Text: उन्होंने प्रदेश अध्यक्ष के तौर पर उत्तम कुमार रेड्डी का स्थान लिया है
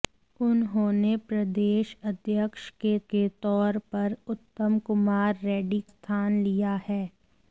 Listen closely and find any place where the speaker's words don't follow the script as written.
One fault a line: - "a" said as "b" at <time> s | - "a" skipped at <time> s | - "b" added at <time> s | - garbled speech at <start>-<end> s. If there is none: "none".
- "के" added at 3.1 s
- "का" skipped at 5.8 s